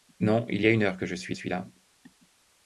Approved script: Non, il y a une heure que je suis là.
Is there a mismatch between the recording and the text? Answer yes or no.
yes